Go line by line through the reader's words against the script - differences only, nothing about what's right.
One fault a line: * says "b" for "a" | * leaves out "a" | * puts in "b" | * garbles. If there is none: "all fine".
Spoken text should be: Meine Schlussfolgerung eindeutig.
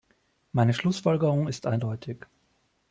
* puts in "ist"